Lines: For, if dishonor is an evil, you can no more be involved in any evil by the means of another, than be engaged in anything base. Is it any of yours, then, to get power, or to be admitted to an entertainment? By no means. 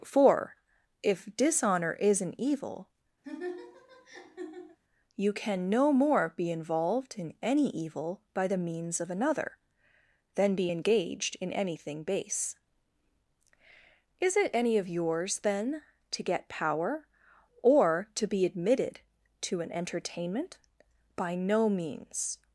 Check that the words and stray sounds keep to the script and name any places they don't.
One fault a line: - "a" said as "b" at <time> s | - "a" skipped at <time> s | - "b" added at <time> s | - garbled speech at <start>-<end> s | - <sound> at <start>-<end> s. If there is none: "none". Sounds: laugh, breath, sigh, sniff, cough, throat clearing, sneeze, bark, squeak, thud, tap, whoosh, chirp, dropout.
- laugh at 3.2-4.8 s